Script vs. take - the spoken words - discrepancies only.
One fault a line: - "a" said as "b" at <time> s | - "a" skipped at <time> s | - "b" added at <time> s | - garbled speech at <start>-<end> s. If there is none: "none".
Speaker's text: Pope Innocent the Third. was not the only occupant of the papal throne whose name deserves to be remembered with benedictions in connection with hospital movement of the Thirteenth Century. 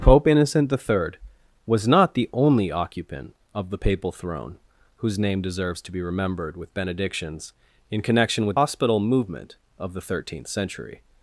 none